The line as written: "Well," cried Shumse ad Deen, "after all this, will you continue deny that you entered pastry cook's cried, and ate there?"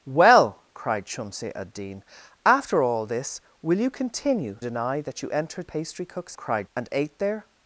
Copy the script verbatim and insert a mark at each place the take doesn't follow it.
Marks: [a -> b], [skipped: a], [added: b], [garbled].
"Well," cried Shumse ad Deen, "after all this, will you continue deny that you entered pastry cook's cried, and ate there?"